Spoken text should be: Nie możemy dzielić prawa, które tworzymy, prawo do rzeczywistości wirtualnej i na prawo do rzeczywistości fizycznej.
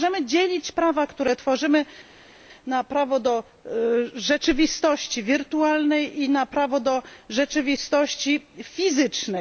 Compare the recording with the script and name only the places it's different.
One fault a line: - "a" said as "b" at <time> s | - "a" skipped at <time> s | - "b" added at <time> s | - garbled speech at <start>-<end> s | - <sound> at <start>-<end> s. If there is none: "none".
- "na" added at 2.7 s